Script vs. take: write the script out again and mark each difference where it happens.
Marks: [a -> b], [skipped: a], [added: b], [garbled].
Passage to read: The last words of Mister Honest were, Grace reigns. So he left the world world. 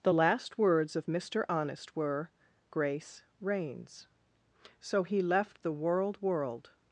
The last words of Mister Honest were, Grace reigns. So he left the world world.